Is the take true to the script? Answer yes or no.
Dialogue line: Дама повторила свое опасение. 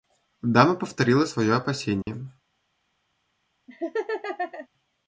yes